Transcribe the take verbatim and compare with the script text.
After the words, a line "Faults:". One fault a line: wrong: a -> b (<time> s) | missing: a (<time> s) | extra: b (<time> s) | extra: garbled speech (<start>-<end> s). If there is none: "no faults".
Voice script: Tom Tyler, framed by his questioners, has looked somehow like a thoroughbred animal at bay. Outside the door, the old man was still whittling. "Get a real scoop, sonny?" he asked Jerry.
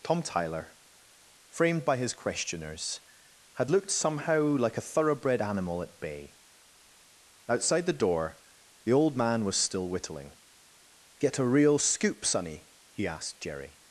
Tom Tyler, framed by his questioners, had looked somehow like a thoroughbred animal at bay. Outside the door, the old man was still whittling. "Get a real scoop, sonny?" he asked Jerry.
Faults:
wrong: has -> had (3.5 s)